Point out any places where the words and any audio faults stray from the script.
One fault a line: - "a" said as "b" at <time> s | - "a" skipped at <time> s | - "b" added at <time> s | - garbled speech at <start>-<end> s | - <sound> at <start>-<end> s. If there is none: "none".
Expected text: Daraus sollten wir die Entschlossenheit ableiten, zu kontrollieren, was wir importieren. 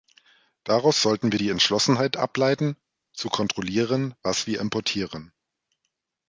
none